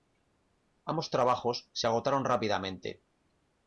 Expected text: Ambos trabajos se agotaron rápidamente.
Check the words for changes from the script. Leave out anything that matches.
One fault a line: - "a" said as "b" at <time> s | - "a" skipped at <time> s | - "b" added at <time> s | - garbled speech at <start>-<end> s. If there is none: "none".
none